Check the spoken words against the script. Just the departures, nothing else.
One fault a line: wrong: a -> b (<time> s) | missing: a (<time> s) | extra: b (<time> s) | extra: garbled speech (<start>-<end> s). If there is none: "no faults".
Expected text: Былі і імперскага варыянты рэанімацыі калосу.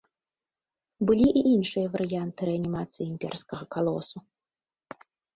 wrong: імперскага -> іншыя (1.6 s)
extra: імперскага (3.1 s)